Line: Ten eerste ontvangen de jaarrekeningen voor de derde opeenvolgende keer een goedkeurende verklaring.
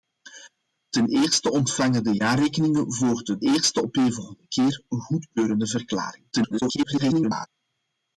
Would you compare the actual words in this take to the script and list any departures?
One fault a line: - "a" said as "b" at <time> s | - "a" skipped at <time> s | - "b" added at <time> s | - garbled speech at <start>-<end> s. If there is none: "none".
- "derde" said as "eerste" at 3.4 s
- garbled speech at 6.3-7.5 s